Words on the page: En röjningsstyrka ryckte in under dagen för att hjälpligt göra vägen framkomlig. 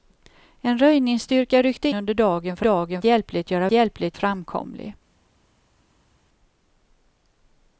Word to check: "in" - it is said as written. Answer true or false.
false